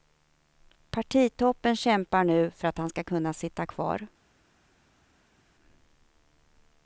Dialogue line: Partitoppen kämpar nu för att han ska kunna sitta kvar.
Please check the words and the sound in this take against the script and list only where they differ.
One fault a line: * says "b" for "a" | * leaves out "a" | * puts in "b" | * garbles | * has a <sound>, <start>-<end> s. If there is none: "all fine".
all fine